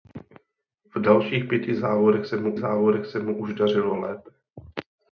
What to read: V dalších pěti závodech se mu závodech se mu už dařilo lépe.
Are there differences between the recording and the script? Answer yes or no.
no